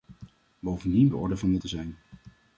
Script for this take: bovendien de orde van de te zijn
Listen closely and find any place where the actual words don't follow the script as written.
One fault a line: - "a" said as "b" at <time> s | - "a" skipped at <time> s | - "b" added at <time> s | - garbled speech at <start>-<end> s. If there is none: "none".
none